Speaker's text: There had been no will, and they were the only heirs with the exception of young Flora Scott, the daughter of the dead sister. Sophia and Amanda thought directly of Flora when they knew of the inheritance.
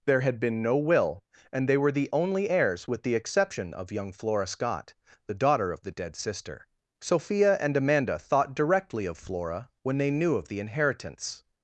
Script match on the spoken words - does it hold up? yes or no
yes